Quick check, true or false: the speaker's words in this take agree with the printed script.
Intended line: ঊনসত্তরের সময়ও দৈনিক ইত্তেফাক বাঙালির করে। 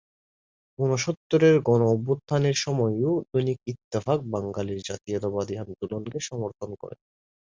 false